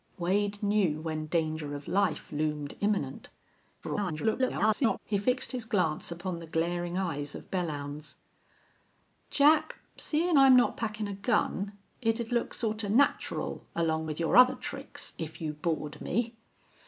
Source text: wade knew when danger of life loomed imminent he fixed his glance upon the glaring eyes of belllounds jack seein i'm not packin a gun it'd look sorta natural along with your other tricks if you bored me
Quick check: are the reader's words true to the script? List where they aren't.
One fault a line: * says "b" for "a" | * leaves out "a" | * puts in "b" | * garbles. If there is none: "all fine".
* garbles